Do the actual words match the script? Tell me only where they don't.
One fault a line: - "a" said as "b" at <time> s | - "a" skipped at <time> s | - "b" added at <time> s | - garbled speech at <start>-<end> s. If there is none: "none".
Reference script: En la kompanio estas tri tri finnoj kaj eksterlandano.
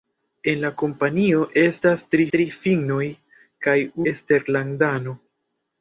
none